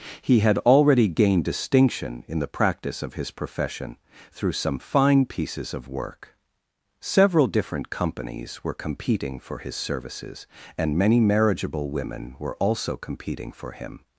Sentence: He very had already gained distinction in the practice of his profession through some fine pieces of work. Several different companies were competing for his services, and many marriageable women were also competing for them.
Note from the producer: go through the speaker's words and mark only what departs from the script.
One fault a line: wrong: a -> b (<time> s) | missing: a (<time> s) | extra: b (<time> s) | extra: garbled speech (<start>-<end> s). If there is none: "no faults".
missing: very (0.4 s)
wrong: them -> him (13.7 s)